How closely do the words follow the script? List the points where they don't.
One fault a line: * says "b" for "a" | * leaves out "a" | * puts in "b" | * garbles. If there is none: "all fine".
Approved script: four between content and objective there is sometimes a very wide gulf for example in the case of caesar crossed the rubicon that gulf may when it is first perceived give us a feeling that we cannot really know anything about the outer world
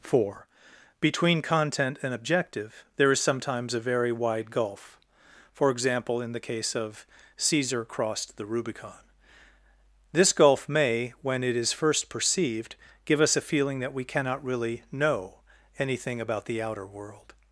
* says "this" for "that"